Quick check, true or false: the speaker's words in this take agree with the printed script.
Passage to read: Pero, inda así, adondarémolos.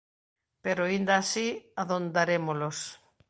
true